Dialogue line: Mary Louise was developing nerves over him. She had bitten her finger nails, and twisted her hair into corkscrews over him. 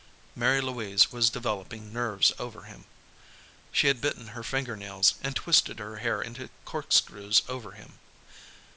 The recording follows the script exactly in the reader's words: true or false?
true